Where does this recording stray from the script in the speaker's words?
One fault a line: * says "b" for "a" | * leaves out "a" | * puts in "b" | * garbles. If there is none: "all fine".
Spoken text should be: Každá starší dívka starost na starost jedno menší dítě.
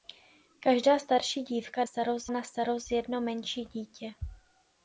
all fine